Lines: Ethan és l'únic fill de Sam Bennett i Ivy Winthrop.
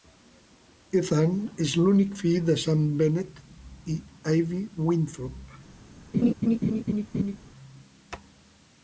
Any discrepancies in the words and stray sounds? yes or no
yes